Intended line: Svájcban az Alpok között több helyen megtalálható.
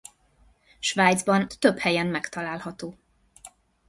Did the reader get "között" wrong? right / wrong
wrong